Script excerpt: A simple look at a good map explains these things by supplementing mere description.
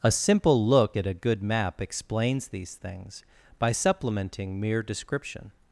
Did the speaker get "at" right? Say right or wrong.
right